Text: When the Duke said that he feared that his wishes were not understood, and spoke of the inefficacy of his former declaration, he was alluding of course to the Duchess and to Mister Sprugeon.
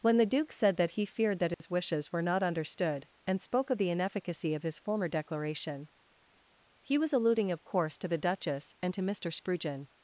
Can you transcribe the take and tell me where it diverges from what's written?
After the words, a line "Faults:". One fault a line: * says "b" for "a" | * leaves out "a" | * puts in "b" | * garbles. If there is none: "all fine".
When the Duke said that he feared that his wishes were not understood, and spoke of the inefficacy of his former declaration, he was alluding of course to the Duchess and to Mister Sprugeon.
Faults:
all fine